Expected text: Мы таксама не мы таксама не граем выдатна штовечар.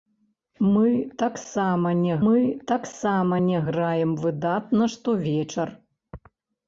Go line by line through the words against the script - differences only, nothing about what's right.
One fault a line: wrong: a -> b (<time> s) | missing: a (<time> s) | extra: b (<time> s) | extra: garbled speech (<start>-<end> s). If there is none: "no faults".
no faults